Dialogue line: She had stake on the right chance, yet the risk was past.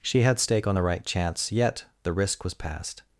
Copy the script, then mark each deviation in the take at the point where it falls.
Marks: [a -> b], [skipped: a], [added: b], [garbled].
She had stake on the right chance, yet the risk was past.